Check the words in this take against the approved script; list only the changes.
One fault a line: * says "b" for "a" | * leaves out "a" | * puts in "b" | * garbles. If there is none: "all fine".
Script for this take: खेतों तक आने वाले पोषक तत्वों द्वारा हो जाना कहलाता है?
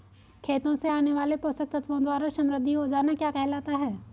* says "से" for "तक"
* puts in "समृद्धि"
* puts in "क्या"